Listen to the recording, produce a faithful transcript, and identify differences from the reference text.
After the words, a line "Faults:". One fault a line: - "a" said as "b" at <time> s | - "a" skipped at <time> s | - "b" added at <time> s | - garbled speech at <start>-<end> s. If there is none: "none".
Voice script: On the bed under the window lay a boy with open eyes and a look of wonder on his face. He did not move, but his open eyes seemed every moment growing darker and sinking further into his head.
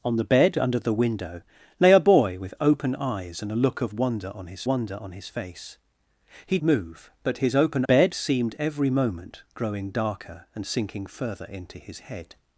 On the bed under the window lay a boy with open eyes and a look of wonder on his wonder on his face. He move, but his open bed seemed every moment growing darker and sinking further into his head.
Faults:
- "wonder on his" added at 4.6 s
- "did not" skipped at 6.6 s
- "eyes" said as "bed" at 7.8 s